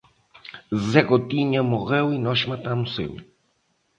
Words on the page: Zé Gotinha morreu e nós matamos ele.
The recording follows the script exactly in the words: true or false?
true